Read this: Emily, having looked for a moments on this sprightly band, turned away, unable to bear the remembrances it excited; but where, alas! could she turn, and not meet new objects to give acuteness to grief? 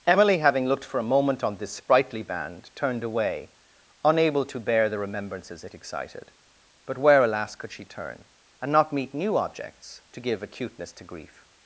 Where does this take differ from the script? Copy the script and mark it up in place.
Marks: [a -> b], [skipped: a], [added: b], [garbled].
Emily, having looked for a [moments -> moment] on this sprightly band, turned away, unable to bear the remembrances it excited; but where, alas! could she turn, and not meet new objects to give acuteness to grief?